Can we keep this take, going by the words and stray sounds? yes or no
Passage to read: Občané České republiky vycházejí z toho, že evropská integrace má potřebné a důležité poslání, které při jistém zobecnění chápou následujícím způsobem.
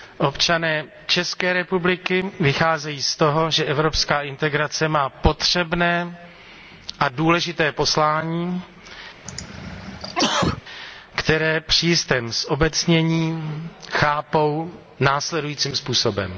no